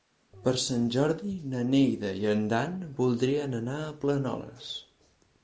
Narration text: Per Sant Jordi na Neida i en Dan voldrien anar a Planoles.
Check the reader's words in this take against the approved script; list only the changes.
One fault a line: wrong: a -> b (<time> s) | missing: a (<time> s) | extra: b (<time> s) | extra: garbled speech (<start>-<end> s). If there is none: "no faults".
no faults